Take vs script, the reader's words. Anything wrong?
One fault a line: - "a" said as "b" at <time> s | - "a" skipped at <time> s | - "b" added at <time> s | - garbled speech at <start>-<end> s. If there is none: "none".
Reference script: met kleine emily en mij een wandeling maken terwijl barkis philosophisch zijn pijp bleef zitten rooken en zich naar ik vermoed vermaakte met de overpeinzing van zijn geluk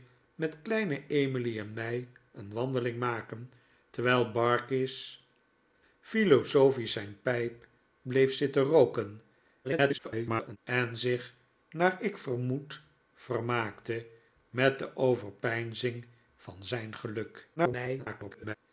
- garbled speech at 9.6-10.6 s
- garbled speech at 17.6-18.6 s